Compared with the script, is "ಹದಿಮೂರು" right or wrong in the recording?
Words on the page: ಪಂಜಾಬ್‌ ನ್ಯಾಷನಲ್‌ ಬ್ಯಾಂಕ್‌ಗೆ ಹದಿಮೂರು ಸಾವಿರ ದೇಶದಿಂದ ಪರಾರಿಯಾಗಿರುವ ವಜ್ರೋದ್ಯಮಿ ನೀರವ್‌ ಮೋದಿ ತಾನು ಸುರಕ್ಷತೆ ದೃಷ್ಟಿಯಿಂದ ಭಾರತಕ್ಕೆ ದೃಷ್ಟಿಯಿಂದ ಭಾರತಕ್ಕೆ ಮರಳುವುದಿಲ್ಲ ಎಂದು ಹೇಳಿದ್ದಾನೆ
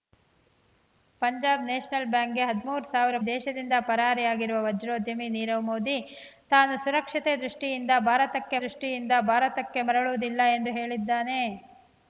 right